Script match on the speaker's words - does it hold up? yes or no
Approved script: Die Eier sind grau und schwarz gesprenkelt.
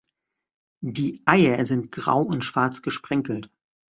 yes